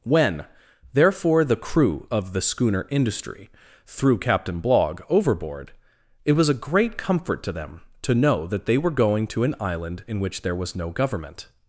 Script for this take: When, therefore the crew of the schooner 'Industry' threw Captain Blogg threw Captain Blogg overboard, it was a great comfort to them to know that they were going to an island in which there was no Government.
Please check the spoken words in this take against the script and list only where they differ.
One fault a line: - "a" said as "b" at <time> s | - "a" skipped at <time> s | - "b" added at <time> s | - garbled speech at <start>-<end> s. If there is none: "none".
- "threw Captain Blogg" skipped at 5.0 s